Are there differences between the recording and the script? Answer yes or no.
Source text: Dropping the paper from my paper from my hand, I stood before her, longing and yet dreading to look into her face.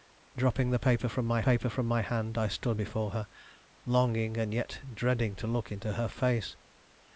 no